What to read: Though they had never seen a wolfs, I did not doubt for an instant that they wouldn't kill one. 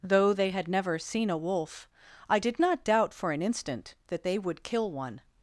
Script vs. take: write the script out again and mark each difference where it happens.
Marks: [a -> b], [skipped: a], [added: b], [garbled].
Though they had never seen a [wolfs, -> wolf] I did not doubt for an instant that they [wouldn't -> would] kill one.